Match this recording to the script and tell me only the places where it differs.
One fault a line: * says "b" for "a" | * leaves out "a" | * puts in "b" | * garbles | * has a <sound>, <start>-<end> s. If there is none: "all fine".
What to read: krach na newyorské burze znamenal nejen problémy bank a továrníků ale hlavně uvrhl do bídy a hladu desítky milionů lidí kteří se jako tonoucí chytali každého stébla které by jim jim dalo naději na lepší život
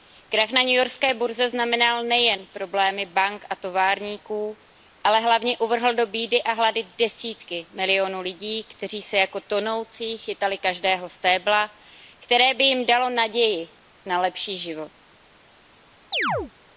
* leaves out "jim"
* has a chirp, 16.1-16.5 s